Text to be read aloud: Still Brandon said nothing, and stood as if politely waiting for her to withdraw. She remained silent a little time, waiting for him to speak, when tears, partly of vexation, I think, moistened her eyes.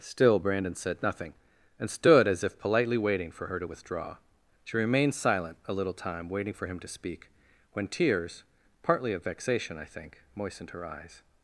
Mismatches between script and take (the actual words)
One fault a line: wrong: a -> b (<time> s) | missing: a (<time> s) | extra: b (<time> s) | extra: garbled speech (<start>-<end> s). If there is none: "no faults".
no faults